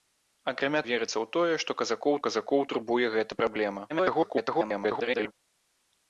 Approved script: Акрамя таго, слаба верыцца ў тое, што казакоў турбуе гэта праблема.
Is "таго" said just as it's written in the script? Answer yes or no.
no